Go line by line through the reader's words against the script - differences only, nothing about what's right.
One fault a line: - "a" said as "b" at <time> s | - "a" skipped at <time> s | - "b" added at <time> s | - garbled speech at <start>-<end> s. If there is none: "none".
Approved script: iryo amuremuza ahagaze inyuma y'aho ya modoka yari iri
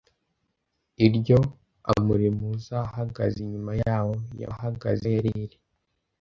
- "modoka" said as "ahagaze" at 4.5 s